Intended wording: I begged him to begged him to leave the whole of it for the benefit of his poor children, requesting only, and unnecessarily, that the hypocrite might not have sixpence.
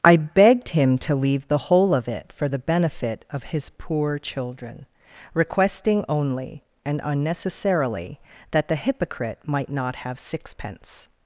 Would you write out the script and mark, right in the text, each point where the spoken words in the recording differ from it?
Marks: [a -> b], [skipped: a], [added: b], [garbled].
I begged him to [skipped: begged him to] leave the whole of it for the benefit of his poor children, requesting only, and unnecessarily, that the hypocrite might not have sixpence.